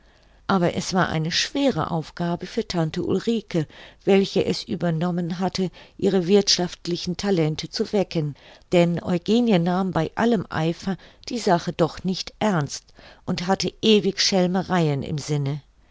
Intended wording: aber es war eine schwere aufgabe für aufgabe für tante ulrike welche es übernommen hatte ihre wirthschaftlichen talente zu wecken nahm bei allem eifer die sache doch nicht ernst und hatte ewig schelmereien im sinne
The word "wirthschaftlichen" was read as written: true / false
true